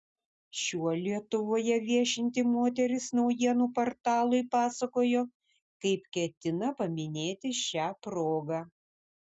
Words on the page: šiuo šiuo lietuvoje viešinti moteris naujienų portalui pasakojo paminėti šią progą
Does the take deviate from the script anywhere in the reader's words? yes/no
yes